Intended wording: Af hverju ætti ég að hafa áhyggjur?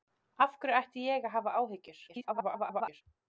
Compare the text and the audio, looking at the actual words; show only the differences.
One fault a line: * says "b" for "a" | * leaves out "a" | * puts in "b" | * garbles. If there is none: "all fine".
* garbles